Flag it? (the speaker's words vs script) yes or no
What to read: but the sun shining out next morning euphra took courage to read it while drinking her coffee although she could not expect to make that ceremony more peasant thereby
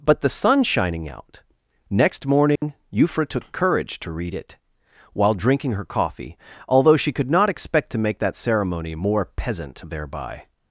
no